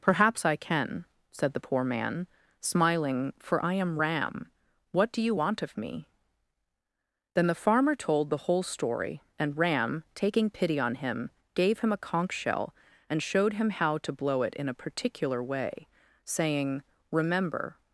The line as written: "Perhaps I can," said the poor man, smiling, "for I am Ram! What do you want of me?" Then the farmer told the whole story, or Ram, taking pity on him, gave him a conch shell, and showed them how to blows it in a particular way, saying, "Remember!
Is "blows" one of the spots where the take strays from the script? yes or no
yes